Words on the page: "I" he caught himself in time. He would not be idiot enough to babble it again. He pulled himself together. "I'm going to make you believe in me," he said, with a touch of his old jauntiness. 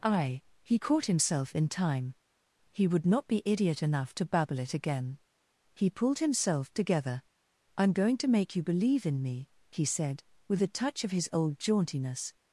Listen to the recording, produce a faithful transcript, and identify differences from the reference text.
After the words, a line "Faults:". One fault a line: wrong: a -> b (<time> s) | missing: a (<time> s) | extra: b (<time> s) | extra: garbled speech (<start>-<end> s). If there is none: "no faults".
"I" he caught himself in time. He would not be idiot enough to babble it again. He pulled himself together. "I'm going to make you believe in me," he said, with a touch of his old jauntiness.
Faults:
no faults